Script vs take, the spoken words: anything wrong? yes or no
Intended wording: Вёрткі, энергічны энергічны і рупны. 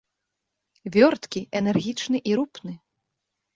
yes